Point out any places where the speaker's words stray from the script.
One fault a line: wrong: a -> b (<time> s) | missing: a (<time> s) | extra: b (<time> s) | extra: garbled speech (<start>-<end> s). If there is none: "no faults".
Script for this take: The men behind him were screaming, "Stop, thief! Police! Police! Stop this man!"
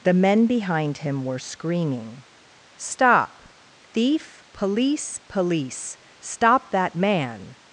wrong: this -> that (6.7 s)